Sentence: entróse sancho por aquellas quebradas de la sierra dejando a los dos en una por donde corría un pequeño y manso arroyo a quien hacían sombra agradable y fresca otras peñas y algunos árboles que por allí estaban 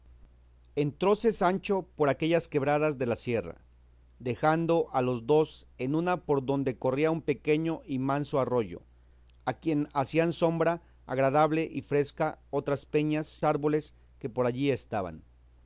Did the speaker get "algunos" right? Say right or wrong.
wrong